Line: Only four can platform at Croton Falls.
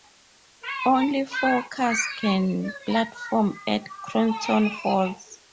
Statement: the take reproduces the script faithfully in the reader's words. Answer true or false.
false